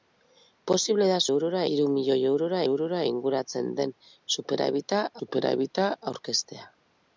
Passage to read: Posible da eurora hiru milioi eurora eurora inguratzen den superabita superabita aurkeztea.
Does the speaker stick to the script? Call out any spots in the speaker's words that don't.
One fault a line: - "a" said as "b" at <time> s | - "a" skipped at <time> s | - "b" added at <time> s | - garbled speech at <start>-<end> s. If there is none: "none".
none